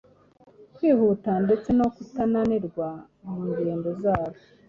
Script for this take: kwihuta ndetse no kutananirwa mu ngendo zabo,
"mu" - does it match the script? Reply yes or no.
yes